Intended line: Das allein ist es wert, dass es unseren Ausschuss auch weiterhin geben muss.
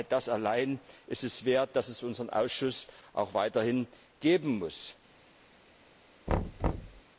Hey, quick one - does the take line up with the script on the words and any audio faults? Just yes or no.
no